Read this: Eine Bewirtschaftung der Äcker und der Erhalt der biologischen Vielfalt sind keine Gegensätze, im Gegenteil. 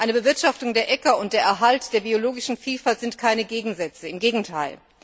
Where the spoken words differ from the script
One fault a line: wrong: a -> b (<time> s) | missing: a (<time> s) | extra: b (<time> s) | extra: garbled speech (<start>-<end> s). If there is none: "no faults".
no faults